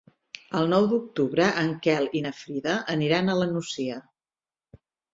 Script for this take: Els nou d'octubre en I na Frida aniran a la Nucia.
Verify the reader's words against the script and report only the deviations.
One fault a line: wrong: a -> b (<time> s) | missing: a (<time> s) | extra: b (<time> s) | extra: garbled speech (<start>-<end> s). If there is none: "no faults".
wrong: Els -> El (0.6 s)
extra: Quel (1.9 s)